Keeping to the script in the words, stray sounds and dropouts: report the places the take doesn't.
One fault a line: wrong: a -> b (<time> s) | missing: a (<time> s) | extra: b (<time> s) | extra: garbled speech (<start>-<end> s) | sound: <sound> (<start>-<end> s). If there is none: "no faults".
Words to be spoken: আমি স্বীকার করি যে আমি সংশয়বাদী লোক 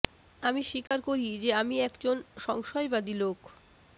sound: dropout (0.9-0.9 s)
extra: একজন (1.8 s)